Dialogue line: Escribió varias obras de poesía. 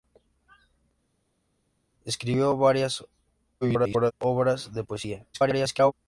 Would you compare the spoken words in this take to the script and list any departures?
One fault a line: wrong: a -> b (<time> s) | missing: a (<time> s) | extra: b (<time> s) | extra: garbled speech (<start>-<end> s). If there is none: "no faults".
extra: garbled speech (3.6-4.1 s)
extra: garbled speech (5.3-5.9 s)